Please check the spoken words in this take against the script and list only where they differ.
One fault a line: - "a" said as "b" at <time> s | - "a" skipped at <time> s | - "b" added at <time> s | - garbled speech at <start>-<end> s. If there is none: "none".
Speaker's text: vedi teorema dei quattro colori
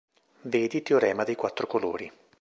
none